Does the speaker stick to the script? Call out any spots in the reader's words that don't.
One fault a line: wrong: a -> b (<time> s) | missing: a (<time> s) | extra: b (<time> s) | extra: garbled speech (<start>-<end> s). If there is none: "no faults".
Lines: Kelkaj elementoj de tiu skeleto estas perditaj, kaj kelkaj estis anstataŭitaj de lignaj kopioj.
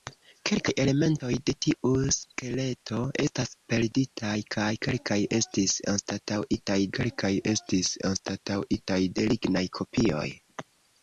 extra: kelkaj estis anstataŭitaj (7.0 s)